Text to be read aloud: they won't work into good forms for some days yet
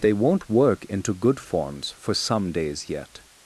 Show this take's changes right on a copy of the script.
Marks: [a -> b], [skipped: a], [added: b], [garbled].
they won't work into good forms for some days yet